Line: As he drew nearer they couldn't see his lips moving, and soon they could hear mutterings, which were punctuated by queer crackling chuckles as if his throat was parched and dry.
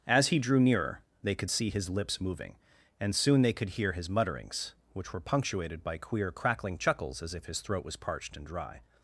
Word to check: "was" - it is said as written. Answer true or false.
true